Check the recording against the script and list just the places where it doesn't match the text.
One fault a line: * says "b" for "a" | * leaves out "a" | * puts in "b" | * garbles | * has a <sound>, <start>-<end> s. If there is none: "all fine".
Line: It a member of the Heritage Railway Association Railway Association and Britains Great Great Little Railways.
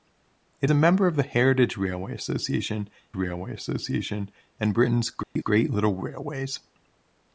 * has a dropout, 5.2-5.4 s